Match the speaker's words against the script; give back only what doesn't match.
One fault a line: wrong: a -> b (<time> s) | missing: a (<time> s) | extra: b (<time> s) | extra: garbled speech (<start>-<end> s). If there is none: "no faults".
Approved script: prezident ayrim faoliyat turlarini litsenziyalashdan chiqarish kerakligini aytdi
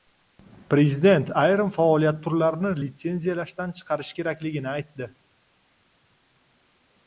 no faults